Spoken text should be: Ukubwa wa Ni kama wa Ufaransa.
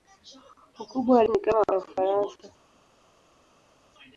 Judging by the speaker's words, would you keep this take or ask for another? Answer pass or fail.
pass